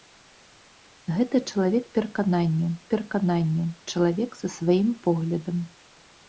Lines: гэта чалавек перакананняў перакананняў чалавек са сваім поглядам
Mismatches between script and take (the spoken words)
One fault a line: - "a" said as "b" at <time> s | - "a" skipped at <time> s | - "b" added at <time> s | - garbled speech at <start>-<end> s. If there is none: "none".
none